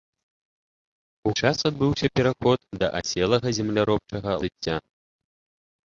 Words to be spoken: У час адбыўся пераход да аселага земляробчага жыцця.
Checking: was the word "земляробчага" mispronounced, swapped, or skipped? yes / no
no